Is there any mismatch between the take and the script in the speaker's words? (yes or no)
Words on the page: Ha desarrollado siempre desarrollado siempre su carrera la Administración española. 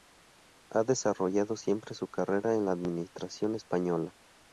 yes